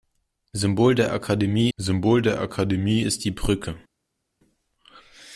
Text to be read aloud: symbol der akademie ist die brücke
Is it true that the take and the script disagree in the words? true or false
true